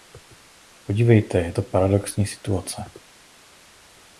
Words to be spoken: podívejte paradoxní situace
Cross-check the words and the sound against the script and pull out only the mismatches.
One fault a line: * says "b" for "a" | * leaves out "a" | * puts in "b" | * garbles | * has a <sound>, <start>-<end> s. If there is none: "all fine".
* puts in "je to"